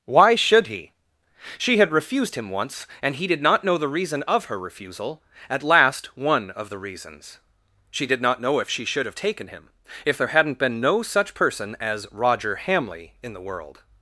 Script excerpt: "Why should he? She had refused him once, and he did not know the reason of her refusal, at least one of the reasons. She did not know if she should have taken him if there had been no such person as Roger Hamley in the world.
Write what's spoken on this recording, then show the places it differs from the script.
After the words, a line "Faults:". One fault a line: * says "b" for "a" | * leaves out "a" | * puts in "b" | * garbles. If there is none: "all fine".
"Why should he? She had refused him once, and he did not know the reason of her refusal, at last one of the reasons. She did not know if she should have taken him if there hadn't been no such person as Roger Hamley in the world.
Faults:
* says "last" for "least"
* says "hadn't" for "had"